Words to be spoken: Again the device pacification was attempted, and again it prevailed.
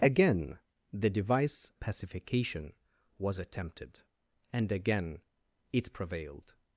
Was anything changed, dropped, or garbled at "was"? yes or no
no